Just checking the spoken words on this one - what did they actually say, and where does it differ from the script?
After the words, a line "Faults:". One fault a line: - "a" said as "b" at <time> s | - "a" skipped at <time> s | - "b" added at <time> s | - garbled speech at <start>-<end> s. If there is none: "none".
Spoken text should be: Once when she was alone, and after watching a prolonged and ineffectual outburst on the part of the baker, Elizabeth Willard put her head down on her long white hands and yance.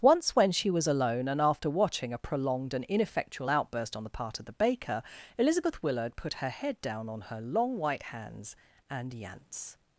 Once when she was alone, and after watching a prolonged and ineffectual outburst on the part of the baker, Elizabeth Willard put her head down on her long white hands and yance.
Faults:
none